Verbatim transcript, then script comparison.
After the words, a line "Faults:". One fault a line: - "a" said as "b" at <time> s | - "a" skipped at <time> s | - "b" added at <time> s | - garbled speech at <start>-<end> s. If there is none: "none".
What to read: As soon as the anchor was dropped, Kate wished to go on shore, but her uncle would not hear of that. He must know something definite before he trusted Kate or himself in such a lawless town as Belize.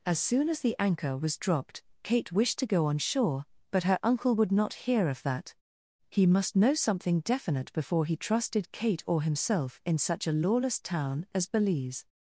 As soon as the anchor was dropped, Kate wished to go on shore, but her uncle would not hear of that. He must know something definite before he trusted Kate or himself in such a lawless town as Belize.
Faults:
none